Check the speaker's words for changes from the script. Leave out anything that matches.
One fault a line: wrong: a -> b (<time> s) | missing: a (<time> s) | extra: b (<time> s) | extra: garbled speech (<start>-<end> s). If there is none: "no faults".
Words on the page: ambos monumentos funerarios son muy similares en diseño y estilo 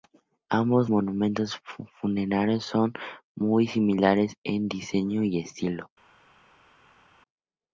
no faults